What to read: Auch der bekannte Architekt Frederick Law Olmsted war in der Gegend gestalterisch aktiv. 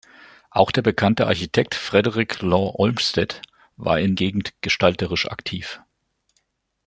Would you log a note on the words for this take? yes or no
yes